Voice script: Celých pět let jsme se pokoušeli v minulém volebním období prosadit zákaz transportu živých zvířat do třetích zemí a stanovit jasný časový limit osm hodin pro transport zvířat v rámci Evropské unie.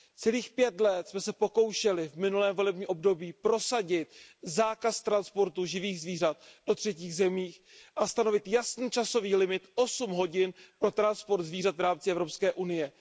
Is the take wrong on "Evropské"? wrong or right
right